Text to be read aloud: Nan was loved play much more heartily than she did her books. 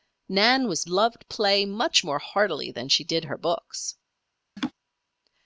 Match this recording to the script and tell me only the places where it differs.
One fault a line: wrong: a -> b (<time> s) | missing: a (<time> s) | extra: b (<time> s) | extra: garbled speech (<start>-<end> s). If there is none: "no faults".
no faults